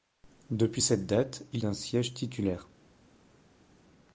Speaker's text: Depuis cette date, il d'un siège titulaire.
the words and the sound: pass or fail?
pass